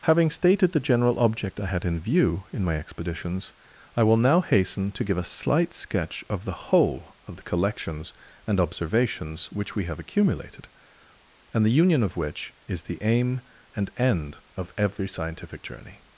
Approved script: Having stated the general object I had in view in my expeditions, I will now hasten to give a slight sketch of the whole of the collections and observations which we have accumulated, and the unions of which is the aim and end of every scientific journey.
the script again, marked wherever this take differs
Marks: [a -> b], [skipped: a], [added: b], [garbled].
Having stated the general object I had in view in my expeditions, I will now hasten to give a slight sketch of the whole of the collections and observations which we have accumulated, and the [unions -> union] of which is the aim and end of every scientific journey.